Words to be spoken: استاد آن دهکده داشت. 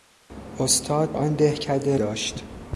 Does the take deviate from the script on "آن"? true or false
false